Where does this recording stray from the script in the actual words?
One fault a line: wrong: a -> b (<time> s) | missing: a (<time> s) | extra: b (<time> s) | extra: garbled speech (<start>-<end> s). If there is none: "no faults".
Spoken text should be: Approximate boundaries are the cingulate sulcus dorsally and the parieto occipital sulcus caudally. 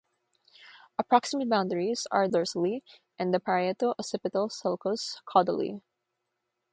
missing: the cingulate sulcus (2.3 s)